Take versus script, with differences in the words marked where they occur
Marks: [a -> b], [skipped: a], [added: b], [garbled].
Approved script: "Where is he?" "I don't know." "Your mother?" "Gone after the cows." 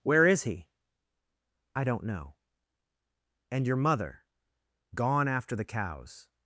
"Where is he?" "I don't know." [added: And] "Your mother?" "Gone after the cows."